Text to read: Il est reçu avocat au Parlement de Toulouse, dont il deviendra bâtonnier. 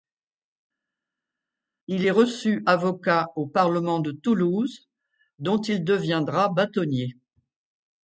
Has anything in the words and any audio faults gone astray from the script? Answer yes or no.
no